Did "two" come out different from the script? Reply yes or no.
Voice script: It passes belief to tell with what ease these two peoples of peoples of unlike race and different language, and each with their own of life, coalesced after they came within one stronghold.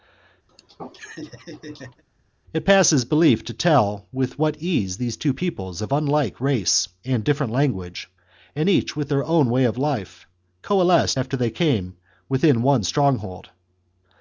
no